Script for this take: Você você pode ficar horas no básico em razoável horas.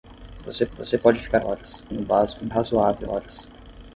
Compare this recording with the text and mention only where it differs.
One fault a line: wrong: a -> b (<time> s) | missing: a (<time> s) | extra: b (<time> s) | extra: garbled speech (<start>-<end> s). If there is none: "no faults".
no faults